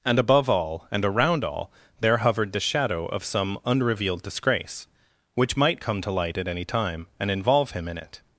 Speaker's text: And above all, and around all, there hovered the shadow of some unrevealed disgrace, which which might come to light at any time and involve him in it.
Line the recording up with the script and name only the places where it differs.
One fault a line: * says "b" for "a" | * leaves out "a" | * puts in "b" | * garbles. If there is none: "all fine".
* leaves out "which"